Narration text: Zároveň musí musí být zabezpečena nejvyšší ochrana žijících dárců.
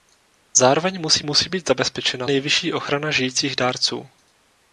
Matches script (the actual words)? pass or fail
pass